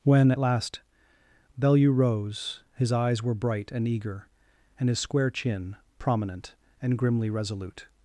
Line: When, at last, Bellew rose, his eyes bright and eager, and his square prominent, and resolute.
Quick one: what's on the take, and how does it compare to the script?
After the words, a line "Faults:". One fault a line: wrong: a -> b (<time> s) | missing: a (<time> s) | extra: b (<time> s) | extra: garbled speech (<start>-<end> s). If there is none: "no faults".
When, at last, Bellew rose, his eyes were bright and eager, and his square chin, prominent, and grimly resolute.
Faults:
extra: were (3.2 s)
extra: chin (5.3 s)
extra: grimly (7.0 s)